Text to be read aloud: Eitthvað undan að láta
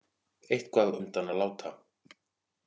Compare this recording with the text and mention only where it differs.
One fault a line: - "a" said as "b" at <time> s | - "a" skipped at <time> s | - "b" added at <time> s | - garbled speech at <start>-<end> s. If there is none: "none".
none